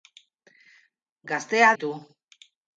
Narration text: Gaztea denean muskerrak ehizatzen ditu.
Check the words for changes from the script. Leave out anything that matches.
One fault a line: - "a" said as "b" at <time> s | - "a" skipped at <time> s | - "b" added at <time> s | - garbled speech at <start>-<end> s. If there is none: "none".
- "denean muskerrak ehizatzen" skipped at 1.7 s